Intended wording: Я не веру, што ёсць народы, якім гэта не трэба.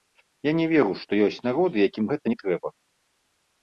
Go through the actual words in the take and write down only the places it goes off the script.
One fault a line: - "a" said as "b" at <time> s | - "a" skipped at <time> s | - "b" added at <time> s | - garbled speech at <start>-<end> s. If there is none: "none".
none